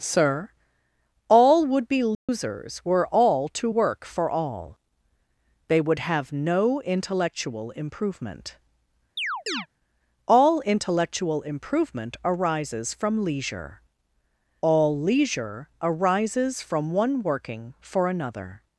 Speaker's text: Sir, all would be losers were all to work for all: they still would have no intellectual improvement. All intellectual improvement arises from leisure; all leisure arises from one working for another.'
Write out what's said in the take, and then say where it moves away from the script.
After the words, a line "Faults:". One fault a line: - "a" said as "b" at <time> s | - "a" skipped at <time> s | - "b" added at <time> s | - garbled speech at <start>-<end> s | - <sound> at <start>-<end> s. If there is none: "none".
Sir, all would be losers were all to work for all: they would have no intellectual improvement. All intellectual improvement arises from leisure; all leisure arises from one working for another.'
Faults:
- dropout at 2.1-2.3 s
- "still" skipped at 5.8 s
- chirp at 9.2-9.7 s